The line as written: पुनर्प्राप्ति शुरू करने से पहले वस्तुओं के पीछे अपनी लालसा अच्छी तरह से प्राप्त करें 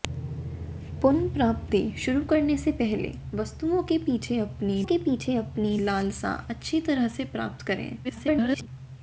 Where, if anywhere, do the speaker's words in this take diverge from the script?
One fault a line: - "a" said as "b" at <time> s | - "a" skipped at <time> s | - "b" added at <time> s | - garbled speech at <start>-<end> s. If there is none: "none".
- "के पीछे अपनी" added at 4.8 s
- garbled speech at 8.0-8.7 s